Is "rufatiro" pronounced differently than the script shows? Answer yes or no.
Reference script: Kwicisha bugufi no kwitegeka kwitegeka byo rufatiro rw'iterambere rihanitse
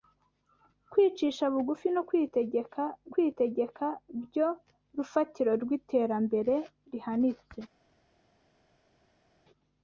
no